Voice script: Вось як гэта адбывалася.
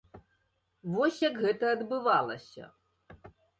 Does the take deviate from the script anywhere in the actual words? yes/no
no